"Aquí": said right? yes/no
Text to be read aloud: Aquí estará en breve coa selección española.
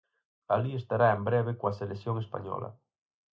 no